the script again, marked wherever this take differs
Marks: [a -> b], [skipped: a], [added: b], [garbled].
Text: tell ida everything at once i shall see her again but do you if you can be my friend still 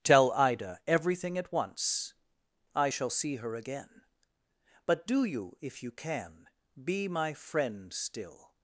tell ida everything at once i shall see her again but do you if you can be my friend still